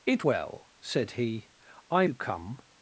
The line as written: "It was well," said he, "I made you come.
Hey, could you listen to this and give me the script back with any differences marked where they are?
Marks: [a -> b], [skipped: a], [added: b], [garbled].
"It [skipped: was] well," said he, "I [skipped: made] you come.